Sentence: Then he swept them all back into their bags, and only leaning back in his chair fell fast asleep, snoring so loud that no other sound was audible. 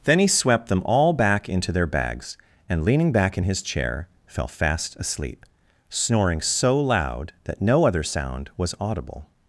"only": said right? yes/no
no